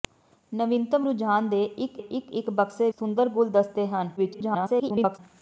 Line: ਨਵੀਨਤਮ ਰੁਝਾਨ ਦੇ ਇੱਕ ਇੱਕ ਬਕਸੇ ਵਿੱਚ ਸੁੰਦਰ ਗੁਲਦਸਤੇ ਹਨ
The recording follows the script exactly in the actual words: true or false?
false